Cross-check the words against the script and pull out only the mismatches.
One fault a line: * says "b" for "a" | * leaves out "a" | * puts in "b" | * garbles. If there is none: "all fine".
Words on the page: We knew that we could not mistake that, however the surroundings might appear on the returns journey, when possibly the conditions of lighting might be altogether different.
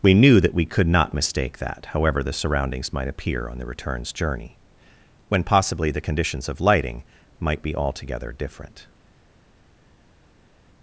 all fine